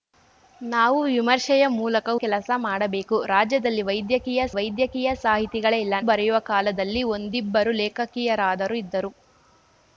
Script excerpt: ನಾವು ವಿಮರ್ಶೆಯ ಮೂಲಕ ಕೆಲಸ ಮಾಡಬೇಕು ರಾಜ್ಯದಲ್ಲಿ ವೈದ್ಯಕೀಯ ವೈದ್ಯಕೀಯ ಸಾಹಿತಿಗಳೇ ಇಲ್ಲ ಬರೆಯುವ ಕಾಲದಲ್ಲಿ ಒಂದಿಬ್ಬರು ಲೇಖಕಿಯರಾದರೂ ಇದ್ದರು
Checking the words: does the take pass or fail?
pass